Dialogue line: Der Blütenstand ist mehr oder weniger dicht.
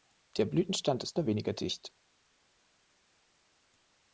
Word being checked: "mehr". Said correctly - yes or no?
no